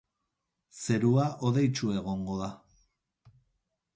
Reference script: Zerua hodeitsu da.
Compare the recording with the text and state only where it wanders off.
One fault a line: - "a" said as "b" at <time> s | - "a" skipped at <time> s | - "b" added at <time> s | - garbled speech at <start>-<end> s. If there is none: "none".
- "egongo" added at 2.0 s